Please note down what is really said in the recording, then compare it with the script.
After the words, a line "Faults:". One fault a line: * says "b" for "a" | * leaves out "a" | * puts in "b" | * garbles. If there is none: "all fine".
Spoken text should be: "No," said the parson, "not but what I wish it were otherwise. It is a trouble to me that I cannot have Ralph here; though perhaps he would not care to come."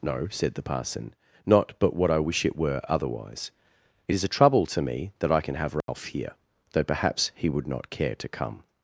"No," said the parson, "not but what I wish it were otherwise. It is a trouble to me that I can have Ralph here; though perhaps he would not care to come."
Faults:
* says "can" for "cannot"